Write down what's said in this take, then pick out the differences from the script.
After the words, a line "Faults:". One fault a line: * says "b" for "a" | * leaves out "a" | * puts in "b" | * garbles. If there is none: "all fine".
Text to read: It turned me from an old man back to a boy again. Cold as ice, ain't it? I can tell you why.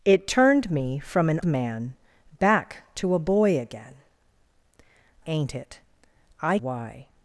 It turned me from an man back to a boy again. Ain't it? I why.
Faults:
* leaves out "old"
* leaves out "Cold as ice"
* leaves out "can tell you"